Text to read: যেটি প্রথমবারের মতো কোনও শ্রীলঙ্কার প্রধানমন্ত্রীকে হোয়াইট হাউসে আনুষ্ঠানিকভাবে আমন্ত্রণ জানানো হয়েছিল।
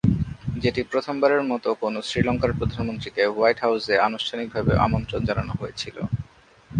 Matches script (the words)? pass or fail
pass